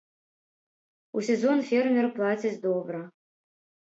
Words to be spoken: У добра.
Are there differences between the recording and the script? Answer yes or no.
yes